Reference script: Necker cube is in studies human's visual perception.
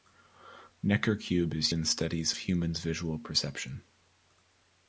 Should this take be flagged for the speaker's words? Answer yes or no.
no